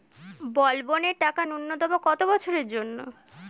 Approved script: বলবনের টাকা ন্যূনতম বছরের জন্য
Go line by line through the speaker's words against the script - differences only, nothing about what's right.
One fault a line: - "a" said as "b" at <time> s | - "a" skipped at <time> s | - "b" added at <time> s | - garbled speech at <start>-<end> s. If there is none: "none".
- "কত" added at 2.0 s